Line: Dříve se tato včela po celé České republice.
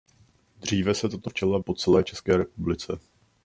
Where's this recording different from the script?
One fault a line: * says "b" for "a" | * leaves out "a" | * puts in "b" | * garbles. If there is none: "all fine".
all fine